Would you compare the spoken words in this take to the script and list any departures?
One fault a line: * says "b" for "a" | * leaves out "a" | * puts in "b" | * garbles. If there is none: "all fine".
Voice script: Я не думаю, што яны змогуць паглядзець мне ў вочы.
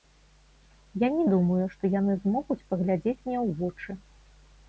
all fine